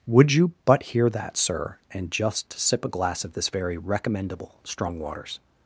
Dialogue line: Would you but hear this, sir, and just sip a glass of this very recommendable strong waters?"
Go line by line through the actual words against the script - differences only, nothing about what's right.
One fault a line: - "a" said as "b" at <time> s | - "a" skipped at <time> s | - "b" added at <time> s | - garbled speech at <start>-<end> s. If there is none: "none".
- "this" said as "that" at 1.1 s